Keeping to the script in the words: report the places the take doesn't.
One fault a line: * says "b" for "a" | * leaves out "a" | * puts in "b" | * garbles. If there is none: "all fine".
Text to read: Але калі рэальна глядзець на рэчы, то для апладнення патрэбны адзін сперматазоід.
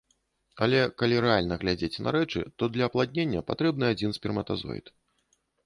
all fine